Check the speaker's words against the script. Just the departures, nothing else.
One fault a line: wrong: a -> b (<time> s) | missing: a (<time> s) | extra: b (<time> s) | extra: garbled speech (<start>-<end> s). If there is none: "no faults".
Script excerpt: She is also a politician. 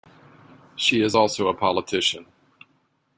no faults